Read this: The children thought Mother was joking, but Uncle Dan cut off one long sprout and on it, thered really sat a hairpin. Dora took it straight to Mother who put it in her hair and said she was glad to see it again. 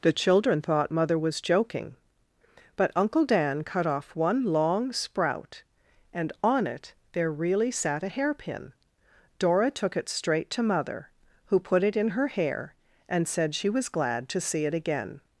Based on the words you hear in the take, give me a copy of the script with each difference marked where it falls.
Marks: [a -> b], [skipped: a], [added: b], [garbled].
The children thought Mother was joking, but Uncle Dan cut off one long sprout and on it, [thered -> there] really sat a hairpin. Dora took it straight to Mother who put it in her hair and said she was glad to see it again.